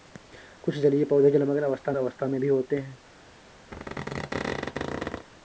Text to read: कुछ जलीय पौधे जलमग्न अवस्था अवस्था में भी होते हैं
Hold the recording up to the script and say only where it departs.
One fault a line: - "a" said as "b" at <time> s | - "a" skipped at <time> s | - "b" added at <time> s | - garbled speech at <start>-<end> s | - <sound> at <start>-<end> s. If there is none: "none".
- squeak at 3.7-5.3 s